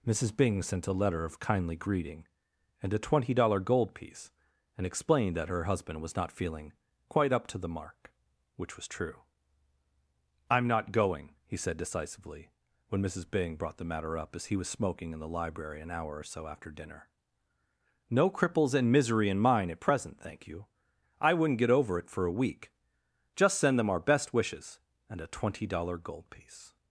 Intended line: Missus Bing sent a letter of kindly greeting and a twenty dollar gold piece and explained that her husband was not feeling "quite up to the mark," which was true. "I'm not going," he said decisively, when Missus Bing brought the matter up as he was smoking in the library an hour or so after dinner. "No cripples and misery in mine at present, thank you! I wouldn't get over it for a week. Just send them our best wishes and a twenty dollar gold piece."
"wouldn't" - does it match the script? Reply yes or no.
yes